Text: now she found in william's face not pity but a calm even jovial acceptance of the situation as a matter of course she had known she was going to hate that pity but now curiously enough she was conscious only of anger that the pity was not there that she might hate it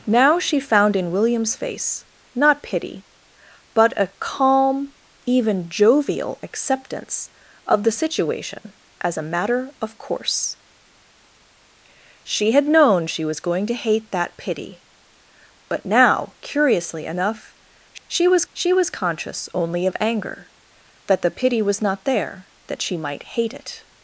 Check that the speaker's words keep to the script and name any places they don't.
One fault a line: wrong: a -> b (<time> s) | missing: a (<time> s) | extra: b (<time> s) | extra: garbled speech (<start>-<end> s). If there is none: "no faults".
extra: she was (18.5 s)